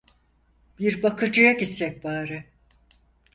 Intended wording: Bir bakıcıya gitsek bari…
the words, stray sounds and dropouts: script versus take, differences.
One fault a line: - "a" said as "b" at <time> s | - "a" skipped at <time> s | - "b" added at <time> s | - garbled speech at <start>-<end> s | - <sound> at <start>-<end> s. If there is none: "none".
none